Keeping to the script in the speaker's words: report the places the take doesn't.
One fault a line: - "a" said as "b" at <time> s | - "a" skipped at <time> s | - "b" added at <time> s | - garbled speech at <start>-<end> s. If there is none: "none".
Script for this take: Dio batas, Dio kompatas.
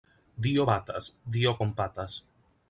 none